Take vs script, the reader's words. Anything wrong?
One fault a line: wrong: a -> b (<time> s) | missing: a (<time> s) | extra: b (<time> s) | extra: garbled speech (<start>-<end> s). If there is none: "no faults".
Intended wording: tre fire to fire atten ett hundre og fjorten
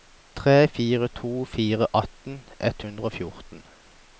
no faults